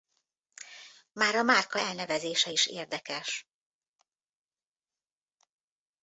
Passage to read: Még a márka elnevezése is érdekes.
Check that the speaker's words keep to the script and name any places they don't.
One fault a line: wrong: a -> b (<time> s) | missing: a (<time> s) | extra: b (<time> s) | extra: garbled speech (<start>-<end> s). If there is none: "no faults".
wrong: Még -> Már (1.1 s)